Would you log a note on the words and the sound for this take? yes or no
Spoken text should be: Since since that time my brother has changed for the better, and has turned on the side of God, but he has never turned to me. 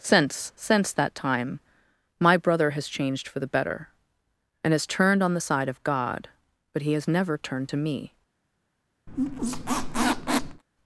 yes